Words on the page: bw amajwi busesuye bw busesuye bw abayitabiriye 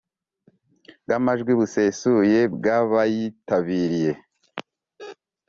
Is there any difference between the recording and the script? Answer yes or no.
yes